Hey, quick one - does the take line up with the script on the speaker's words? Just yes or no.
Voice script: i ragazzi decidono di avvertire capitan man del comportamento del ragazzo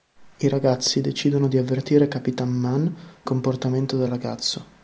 no